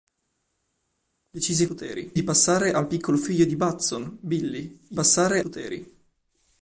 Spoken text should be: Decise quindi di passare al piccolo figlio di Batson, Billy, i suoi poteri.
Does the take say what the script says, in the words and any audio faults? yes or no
no